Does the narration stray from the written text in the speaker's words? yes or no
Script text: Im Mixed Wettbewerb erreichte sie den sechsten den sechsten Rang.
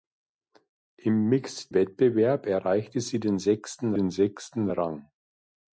no